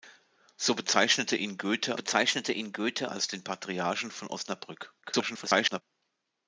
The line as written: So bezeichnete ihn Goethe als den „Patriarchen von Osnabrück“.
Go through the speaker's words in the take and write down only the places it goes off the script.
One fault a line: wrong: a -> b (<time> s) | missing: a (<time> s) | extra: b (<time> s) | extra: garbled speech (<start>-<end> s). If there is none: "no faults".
extra: bezeichnete ihn Goethe (1.9 s)
extra: garbled speech (5.0-5.8 s)